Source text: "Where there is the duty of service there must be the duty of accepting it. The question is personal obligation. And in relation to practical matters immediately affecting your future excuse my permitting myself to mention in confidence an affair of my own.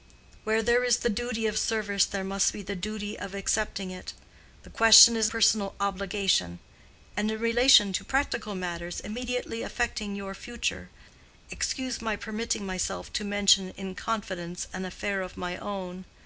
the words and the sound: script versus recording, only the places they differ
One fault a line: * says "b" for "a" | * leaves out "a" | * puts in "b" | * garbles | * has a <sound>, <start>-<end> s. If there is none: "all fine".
all fine